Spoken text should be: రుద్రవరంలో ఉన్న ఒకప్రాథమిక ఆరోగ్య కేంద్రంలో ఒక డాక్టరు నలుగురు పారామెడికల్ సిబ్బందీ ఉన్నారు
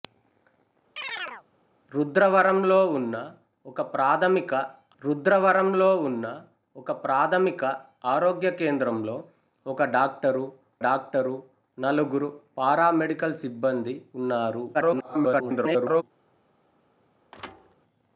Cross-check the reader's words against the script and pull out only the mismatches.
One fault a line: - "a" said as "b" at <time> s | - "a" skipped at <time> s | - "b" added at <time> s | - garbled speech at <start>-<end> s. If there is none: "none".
- "రుద్రవరంలో ఉన్న ఒకప్రాథమిక" added at 5.0 s
- "డాక్టరు" added at 10.9 s
- garbled speech at 14.7-16.0 s